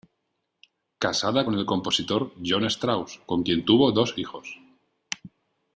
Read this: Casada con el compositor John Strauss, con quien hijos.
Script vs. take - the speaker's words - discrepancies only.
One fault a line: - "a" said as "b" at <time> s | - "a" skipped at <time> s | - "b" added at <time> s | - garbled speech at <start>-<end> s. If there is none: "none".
- "tuvo dos" added at 3.6 s